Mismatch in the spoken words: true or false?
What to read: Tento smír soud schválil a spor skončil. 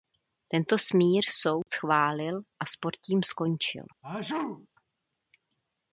true